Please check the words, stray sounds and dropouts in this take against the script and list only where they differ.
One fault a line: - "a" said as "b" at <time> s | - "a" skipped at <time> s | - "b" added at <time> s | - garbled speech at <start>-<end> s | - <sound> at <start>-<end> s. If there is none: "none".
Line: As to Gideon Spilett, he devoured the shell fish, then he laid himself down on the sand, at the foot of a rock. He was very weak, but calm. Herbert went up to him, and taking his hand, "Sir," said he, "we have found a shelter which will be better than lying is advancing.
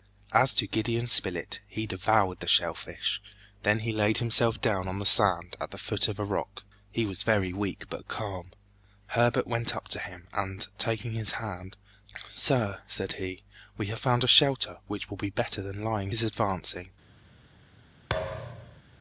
- thud at 18.1-18.8 s